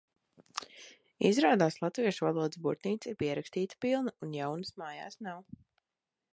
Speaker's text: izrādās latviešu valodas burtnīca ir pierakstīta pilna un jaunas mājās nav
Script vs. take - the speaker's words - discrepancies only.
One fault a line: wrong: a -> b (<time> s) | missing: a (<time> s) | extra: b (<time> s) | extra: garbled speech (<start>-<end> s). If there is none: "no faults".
no faults